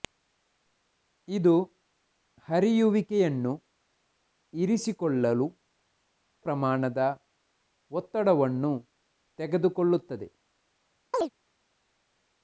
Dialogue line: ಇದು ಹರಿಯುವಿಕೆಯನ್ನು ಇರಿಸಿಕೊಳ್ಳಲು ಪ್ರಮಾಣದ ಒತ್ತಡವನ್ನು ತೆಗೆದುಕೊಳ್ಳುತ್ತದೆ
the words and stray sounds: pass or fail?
fail